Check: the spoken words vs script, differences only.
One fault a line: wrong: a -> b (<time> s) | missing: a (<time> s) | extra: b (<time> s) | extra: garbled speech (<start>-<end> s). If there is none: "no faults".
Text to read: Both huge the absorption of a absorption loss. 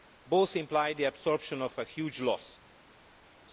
wrong: huge -> imply (0.6 s)
wrong: absorption -> huge (1.8 s)